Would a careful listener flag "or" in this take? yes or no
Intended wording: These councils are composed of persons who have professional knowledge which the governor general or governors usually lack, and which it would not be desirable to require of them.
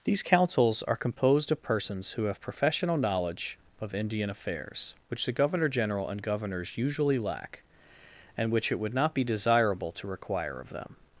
yes